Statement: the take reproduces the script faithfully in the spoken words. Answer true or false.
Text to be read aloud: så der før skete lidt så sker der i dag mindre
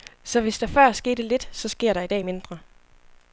false